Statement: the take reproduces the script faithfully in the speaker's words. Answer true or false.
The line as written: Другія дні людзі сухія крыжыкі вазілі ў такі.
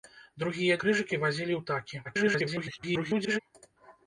false